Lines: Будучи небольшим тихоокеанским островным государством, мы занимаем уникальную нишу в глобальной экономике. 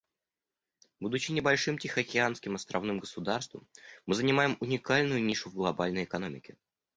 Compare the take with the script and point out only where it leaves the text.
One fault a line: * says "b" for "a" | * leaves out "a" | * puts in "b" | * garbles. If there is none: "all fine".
all fine